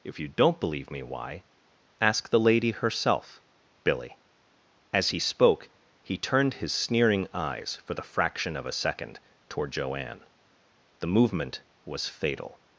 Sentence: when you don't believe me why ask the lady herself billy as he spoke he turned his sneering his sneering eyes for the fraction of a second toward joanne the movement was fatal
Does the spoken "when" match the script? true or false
false